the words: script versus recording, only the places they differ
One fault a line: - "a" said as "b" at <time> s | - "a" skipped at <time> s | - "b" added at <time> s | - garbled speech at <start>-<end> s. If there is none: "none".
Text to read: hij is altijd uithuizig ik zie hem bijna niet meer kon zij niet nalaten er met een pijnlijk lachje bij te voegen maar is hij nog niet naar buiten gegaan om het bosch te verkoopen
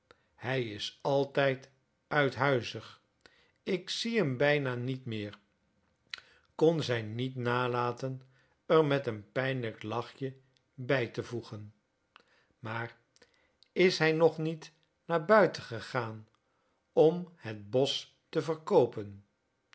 none